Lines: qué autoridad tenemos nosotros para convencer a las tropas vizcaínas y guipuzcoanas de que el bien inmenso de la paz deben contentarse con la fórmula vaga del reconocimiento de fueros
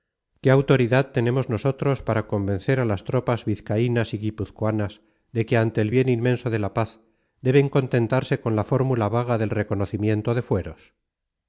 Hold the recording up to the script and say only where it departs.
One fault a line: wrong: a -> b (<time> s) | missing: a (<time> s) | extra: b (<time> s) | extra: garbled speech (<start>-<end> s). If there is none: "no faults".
extra: ante (5.6 s)